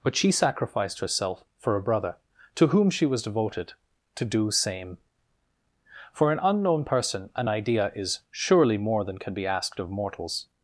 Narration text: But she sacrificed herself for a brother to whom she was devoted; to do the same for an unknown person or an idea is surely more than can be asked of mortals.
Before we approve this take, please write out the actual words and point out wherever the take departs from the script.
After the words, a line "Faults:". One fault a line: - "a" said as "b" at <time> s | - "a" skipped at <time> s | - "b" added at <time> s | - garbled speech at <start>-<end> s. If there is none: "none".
But she sacrificed herself for a brother to whom she was devoted; to do same for an unknown person an idea is surely more than can be asked of mortals.
Faults:
- "the" skipped at 4.5 s
- "or" skipped at 7.3 s